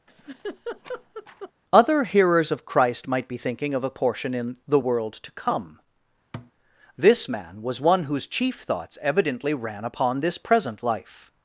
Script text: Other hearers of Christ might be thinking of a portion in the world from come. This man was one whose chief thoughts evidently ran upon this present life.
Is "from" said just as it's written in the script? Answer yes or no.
no